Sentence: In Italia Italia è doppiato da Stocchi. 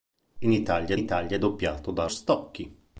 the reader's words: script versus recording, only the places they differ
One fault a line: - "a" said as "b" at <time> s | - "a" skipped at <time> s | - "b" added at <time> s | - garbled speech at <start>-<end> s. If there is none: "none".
none